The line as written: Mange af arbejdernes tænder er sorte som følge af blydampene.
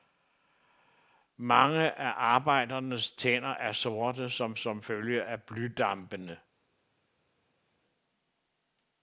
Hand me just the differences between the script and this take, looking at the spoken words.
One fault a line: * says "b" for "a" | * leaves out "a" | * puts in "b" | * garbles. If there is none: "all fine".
* puts in "som"